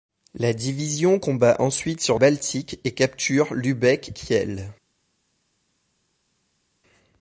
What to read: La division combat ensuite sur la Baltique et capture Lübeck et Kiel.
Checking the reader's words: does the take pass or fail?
fail